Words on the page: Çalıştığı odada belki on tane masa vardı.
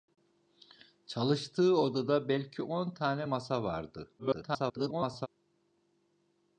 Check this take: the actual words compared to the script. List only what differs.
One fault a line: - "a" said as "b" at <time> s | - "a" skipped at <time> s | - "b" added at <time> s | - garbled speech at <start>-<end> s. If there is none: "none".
- garbled speech at 4.2-5.3 s